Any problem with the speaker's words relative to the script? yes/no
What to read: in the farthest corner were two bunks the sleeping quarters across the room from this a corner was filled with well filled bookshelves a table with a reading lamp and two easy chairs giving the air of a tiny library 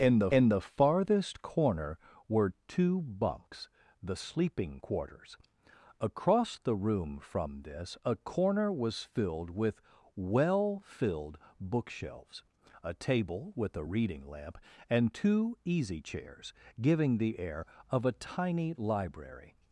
yes